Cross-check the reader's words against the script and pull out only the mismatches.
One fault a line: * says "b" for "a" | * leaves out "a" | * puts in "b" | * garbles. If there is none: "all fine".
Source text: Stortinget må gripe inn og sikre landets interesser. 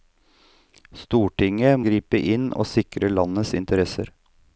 * leaves out "må"